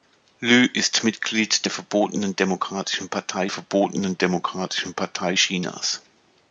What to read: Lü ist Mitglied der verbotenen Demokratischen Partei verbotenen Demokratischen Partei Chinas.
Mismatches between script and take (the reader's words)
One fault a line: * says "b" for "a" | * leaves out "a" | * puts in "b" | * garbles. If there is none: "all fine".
all fine